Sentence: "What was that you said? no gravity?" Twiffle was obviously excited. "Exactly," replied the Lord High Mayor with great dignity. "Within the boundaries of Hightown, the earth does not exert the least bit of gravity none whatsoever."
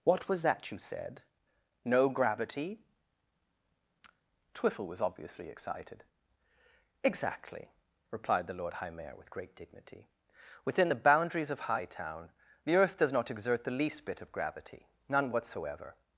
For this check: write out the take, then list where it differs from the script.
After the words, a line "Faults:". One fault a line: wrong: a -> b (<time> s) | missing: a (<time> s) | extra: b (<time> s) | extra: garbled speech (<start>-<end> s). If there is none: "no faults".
"What was that you said? no gravity?" Twiffle was obviously excited. "Exactly," replied the Lord High Mayor with great dignity. "Within the boundaries of Hightown, the earth does not exert the least bit of gravity none whatsoever."
Faults:
no faults